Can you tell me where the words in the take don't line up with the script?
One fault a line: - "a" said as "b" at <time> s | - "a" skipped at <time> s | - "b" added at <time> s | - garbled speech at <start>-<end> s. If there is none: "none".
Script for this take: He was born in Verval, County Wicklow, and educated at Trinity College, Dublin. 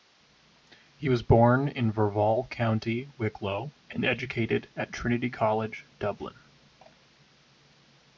none